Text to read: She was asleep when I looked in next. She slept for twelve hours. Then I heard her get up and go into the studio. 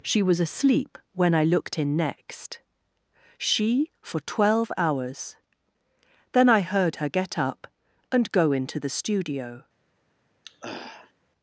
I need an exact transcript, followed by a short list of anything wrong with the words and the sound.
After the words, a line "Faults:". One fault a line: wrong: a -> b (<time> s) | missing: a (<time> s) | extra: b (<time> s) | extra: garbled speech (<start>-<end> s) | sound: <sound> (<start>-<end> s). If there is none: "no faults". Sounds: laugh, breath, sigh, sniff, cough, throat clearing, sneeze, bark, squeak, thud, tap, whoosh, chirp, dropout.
She was asleep when I looked in next. She for twelve hours. Then I heard her get up and go into the studio.
Faults:
missing: slept (3.9 s)
sound: throat clearing (10.4-11.1 s)